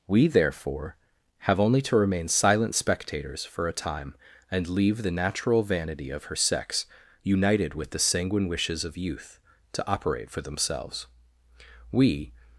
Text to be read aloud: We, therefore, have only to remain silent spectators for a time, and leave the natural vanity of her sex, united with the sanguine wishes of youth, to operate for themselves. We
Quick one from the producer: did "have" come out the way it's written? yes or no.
yes